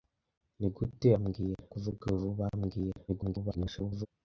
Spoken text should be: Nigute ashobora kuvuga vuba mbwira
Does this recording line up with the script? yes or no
no